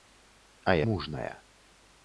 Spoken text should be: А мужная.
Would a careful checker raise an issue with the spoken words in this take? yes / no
no